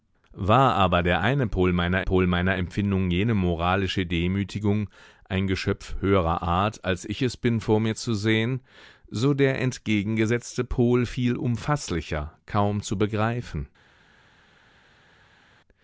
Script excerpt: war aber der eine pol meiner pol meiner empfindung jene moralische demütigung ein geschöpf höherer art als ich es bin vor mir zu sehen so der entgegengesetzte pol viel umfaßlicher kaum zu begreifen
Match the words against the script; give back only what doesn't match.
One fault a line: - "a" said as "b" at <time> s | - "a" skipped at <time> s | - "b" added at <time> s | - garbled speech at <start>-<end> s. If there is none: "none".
none